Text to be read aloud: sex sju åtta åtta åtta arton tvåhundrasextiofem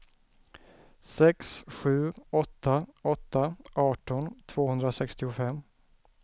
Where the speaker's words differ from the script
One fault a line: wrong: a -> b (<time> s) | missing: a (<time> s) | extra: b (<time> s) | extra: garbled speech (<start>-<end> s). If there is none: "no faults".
missing: åtta (3.5 s)